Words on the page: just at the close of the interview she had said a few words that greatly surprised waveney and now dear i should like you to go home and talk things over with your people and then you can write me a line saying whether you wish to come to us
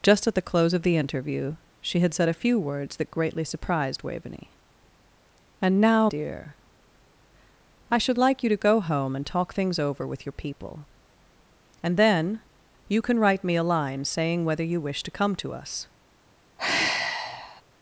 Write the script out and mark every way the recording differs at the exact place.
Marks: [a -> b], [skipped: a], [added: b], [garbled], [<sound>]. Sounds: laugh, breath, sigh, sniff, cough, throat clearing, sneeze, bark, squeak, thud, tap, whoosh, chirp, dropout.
just at the close of the interview she had said a few words that greatly surprised waveney and now dear i should like you to go home and talk things over with your people and then you can write me a line saying whether you wish to come to us [sigh]